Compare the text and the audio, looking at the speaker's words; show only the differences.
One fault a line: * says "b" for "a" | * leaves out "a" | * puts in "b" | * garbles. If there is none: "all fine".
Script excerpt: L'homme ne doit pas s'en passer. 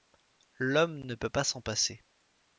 * says "peut" for "doit"